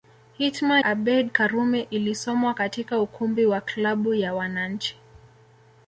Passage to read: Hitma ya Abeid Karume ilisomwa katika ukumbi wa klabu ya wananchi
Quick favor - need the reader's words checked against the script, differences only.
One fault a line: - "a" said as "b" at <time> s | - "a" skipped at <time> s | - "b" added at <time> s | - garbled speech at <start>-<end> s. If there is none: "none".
- "ya" skipped at 0.8 s